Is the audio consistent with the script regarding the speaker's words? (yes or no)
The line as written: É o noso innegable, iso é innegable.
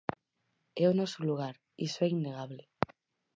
no